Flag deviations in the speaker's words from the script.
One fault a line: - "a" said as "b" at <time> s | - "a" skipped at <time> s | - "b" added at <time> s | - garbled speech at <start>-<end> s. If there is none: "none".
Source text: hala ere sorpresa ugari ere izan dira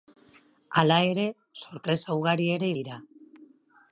- "izan" skipped at 2.7 s